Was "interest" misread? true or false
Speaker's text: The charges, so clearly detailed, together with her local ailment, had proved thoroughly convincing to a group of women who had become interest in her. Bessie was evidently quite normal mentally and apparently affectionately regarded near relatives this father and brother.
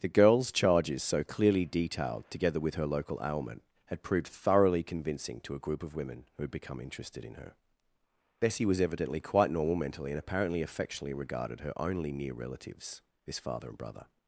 true